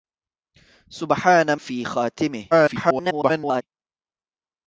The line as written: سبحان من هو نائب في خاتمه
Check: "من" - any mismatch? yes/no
yes